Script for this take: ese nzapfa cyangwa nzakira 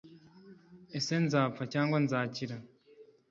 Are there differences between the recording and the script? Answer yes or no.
no